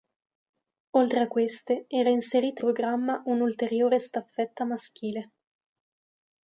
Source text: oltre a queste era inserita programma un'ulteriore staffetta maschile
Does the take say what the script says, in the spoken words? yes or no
yes